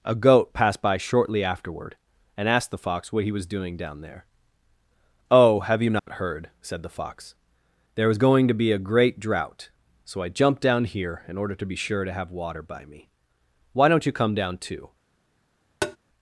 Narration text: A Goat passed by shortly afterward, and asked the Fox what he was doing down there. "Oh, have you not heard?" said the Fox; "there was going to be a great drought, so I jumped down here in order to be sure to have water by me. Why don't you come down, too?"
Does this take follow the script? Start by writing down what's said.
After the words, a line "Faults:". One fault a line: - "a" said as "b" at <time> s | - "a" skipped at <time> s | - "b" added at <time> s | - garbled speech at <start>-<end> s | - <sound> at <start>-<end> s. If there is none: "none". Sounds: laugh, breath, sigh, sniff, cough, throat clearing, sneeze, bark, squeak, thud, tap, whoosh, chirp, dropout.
A Goat passed by shortly afterward, and asked the Fox what he was doing down there. "Oh, have you not heard?" said the Fox; "there was going to be a great drought, so I jumped down here in order to be sure to have water by me. Why don't you come down, too?"
Faults:
- dropout at 6.0-6.1 s
- tap at 15.8-16.0 s